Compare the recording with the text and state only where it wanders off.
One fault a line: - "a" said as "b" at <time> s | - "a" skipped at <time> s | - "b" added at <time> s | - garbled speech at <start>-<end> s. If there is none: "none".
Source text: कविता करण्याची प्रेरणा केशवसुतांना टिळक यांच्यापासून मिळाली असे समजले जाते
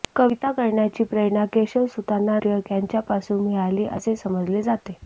none